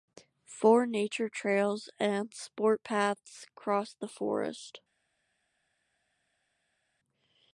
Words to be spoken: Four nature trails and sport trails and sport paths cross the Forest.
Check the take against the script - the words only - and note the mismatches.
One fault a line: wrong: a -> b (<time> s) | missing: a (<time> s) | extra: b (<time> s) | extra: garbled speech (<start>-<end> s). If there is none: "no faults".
missing: trails and sport (2.9 s)